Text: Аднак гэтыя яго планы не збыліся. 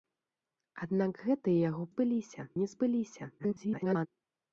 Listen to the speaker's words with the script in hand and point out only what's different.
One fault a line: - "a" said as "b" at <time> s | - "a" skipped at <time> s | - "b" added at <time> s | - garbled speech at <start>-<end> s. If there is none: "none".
- "планы" said as "збыліся" at 1.9 s
- garbled speech at 3.4-4.1 s